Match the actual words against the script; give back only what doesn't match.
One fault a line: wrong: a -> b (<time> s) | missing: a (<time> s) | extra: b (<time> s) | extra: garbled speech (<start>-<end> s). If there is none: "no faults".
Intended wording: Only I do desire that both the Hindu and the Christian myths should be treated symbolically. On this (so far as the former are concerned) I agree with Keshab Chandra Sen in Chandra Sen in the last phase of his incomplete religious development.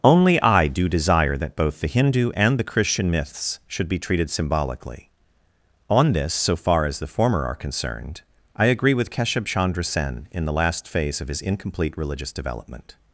missing: Chandra Sen in (10.5 s)